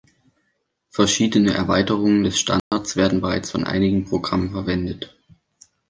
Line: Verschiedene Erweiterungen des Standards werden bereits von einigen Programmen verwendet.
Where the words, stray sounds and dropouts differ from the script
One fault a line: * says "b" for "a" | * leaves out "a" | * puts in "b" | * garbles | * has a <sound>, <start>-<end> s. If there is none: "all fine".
* has a dropout, 2.6-2.7 s